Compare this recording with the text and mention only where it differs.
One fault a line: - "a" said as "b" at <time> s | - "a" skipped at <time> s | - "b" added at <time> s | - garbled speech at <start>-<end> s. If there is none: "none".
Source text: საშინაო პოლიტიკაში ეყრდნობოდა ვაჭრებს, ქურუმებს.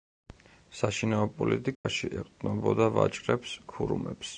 none